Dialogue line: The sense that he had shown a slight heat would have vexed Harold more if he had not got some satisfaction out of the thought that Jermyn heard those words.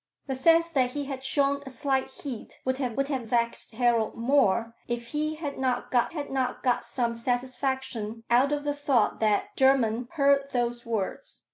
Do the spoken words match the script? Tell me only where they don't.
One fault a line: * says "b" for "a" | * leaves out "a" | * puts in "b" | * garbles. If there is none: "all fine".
* puts in "would have"
* puts in "had not got"